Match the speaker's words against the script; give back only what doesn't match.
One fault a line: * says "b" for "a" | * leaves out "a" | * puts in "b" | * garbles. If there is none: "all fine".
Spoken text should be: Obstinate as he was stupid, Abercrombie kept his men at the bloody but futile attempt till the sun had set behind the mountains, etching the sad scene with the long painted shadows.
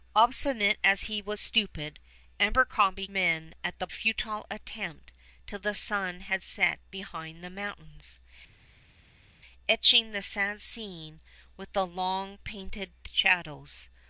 * leaves out "kept his"
* leaves out "bloody but"